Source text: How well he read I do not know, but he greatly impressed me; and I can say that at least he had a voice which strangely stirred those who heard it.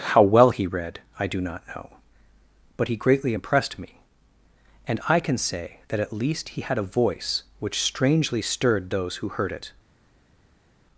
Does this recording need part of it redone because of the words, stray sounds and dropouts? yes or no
no